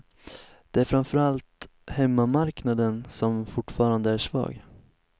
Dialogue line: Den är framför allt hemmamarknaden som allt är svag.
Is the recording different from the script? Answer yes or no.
yes